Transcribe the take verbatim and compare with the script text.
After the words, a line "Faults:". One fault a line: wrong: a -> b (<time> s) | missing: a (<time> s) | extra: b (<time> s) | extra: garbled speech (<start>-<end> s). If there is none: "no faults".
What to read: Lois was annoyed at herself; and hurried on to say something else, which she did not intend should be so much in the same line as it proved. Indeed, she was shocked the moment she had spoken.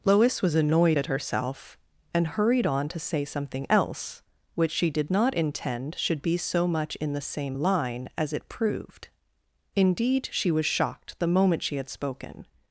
Lois was annoyed at herself; and hurried on to say something else, which she did not intend should be so much in the same line as it proved. Indeed, she was shocked the moment she had spoken.
Faults:
no faults